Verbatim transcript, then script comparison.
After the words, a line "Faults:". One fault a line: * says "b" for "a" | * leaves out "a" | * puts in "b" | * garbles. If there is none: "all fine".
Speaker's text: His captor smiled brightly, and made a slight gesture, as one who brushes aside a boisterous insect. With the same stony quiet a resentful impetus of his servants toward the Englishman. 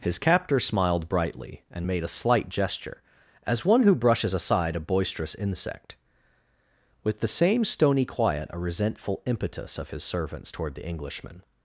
His captor smiled brightly, and made a slight gesture, as one who brushes aside a boisterous insect. With the same stony quiet a resentful impetus of his servants toward the Englishman.
Faults:
all fine